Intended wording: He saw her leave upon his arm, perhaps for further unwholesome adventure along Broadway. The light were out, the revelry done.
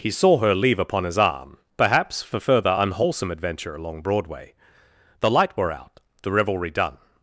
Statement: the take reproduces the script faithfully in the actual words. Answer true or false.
true